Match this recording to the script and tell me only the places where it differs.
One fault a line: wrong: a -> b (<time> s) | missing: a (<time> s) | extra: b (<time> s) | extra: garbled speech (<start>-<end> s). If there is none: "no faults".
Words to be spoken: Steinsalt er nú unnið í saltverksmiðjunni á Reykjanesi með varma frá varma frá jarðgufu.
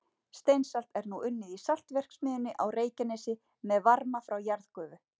missing: varma frá (4.4 s)